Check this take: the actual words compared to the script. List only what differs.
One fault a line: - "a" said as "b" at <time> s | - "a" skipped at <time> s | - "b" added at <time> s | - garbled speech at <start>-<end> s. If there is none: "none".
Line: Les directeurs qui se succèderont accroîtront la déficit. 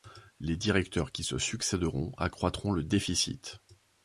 - "la" said as "le" at 2.7 s